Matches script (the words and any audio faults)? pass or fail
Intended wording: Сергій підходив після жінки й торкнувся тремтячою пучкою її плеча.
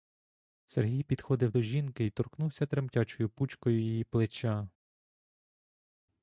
fail